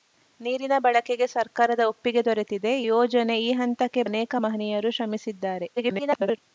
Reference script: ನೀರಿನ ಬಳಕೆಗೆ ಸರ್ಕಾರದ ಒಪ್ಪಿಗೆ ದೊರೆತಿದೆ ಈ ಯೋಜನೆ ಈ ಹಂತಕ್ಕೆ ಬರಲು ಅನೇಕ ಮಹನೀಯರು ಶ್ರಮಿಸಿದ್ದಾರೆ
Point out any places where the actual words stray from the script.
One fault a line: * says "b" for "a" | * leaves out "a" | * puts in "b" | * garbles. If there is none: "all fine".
* leaves out "ಈ"
* leaves out "ಬರಲು"
* garbles